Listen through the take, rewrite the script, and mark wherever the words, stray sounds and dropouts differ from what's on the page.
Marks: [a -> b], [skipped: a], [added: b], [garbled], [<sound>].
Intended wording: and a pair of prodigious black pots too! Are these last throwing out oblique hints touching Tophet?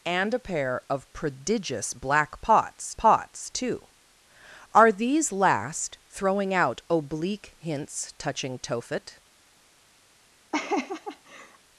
and a pair of prodigious black pots [added: pots] too! Are these last throwing out oblique hints touching Tophet? [laugh]